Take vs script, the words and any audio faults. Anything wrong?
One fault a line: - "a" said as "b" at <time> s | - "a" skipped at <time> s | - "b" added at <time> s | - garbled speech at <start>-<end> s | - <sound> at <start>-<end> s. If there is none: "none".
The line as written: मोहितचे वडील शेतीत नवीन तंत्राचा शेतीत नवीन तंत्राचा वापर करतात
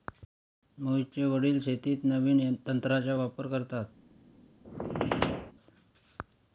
- "शेतीत नवीन तंत्राचा" skipped at 3.1 s
- squeak at 4.6-5.5 s